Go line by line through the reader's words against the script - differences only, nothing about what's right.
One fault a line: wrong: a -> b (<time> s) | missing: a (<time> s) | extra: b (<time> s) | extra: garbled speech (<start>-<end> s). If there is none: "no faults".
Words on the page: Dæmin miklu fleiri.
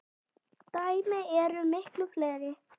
extra: eru (1.4 s)